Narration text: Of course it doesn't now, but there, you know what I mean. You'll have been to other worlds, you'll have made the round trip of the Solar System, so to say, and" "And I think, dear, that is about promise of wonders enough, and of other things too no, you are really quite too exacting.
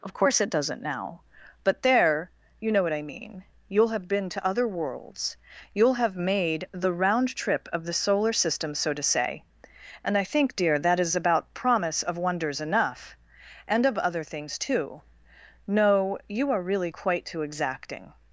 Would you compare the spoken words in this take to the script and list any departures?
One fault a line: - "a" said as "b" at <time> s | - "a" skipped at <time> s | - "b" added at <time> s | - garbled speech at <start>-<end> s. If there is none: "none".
- "And" skipped at 10.2 s